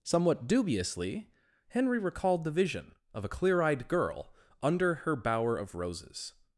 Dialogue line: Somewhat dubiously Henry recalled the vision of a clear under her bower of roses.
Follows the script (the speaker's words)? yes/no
no